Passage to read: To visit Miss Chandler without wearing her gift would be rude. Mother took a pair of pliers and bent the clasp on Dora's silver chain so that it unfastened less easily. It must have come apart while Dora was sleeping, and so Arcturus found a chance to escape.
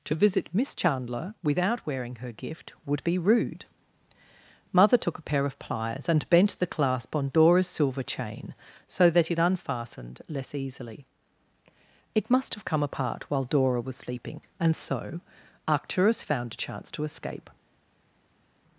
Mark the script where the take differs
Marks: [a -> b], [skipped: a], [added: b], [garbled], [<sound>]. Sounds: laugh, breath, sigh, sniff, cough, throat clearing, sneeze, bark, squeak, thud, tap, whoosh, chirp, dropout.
To visit Miss Chandler without wearing her gift would be rude. Mother took a pair of pliers and bent the clasp on Dora's silver chain so that it unfastened less easily. It must have come apart while Dora was sleeping, and so Arcturus found a chance to escape.